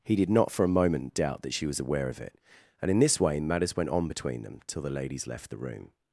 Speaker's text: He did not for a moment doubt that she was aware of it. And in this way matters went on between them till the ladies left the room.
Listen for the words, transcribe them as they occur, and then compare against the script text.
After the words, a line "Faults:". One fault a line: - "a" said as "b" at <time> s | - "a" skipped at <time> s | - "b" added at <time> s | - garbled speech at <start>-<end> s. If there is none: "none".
He did not for a moment doubt that she was aware of it. And in this way matters went on between them till the ladies left the room.
Faults:
none